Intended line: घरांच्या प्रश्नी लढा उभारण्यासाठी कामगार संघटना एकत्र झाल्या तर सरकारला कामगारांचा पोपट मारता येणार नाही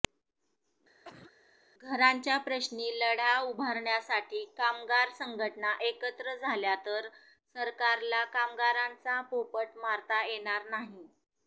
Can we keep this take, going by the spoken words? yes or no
yes